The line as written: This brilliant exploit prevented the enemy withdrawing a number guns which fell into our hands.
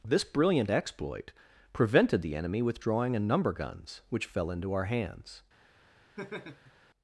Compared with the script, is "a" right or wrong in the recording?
right